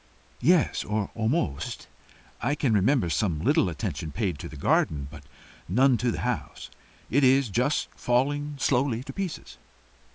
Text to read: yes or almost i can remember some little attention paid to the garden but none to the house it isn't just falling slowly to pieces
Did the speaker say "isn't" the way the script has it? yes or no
no